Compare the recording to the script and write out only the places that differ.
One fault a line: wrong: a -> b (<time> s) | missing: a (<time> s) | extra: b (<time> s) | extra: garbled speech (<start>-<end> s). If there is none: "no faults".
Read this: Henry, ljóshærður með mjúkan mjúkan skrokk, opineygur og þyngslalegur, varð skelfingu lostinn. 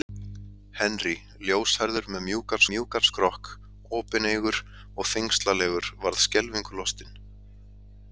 no faults